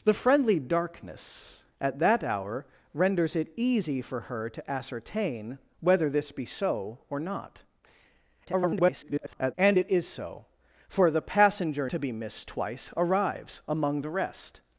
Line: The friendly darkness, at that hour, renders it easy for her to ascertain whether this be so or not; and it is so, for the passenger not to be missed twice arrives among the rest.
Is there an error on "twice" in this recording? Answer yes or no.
no